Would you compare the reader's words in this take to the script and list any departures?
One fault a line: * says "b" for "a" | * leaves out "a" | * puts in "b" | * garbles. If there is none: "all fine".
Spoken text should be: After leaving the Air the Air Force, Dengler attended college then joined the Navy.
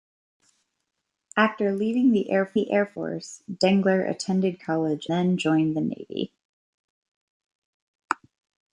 all fine